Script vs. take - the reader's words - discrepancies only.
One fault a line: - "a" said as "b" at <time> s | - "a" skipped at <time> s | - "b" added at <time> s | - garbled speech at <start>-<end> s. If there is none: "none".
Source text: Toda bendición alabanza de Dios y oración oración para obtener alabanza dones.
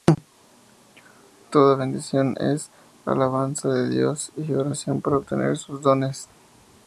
- "es" added at 2.4 s
- "oración" skipped at 5.0 s
- "alabanza" said as "sus" at 5.6 s